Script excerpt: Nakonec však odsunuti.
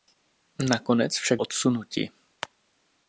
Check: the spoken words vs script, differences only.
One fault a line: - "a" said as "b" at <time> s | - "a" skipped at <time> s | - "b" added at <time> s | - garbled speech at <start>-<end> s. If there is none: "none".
none